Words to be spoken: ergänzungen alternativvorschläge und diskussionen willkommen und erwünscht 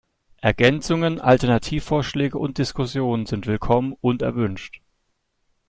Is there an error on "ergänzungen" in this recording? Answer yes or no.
no